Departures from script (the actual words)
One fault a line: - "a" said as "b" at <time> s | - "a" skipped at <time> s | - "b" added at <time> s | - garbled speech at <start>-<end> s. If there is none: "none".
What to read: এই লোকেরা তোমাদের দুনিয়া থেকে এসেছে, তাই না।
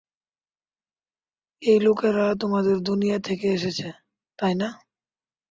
none